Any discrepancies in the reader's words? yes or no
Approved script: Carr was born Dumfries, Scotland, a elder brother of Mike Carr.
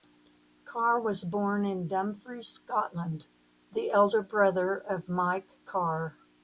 yes